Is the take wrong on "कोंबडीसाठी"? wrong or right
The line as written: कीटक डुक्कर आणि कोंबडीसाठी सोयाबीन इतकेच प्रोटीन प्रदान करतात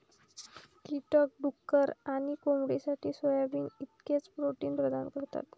right